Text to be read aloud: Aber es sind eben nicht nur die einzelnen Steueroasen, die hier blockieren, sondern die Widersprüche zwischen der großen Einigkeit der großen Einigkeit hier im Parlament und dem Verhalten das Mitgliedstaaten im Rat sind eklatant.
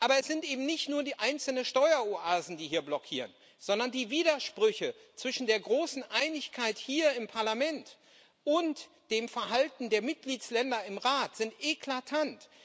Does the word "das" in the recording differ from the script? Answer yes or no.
yes